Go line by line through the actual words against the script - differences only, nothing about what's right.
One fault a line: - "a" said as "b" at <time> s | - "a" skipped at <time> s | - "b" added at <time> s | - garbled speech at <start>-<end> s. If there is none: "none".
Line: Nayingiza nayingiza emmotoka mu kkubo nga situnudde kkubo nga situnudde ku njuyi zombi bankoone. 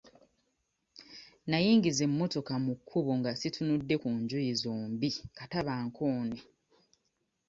- "nayingiza" skipped at 2.0 s
- "kkubo nga situnudde" skipped at 4.0 s
- "kata" added at 5.4 s